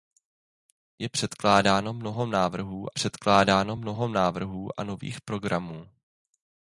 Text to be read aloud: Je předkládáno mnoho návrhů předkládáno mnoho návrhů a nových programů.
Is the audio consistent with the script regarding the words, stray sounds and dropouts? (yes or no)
yes